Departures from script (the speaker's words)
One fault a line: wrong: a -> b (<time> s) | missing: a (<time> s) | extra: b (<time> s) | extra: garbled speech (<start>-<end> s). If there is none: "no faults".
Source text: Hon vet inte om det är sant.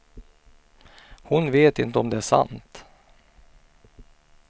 no faults